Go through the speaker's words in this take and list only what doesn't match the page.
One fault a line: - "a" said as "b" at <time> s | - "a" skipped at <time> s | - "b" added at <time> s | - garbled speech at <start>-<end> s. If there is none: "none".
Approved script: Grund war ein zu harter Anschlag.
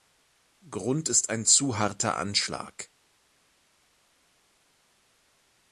- "war" said as "ist" at 1.1 s